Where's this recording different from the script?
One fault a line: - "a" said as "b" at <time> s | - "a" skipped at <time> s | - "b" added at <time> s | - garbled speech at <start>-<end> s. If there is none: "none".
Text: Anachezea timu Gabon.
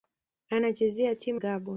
none